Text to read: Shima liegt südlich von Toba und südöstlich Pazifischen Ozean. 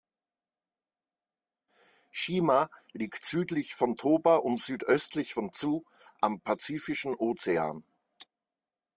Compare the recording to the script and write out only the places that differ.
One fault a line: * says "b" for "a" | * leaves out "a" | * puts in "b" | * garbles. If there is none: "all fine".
* puts in "von Tsu am"